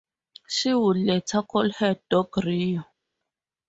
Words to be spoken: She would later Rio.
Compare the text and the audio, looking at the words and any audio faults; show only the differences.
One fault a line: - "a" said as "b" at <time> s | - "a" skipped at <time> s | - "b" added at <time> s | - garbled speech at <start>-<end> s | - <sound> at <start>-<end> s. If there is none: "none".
- "call her dog" added at 1.4 s